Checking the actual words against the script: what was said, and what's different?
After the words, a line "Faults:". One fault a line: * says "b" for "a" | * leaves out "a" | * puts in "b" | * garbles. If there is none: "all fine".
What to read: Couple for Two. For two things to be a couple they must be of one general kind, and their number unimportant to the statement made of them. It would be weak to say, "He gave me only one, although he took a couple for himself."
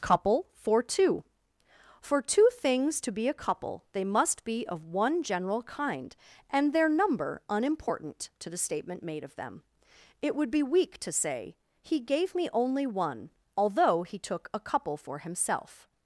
Couple for Two. For two things to be a couple they must be of one general kind, and their number unimportant to the statement made of them. It would be weak to say, "He gave me only one, although he took a couple for himself."
Faults:
all fine